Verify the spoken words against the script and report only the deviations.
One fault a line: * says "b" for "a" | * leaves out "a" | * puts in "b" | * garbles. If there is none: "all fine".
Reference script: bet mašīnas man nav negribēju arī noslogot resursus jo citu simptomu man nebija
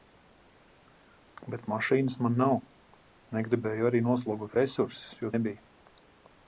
* leaves out "citu simptomu man"